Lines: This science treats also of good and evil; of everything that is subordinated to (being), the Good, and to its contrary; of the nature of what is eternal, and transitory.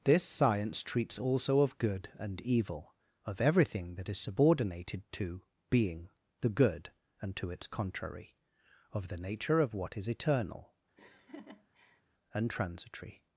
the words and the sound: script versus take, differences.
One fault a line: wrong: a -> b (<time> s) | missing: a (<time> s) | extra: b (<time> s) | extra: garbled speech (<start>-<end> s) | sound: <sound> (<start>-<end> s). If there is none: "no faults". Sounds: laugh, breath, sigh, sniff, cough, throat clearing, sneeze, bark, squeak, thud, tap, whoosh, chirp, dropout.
sound: laugh (11.0-12.0 s)